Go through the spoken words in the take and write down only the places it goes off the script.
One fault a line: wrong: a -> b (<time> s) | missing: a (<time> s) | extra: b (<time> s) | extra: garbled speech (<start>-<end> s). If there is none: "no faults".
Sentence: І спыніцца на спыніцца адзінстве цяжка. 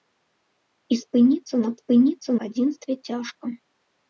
no faults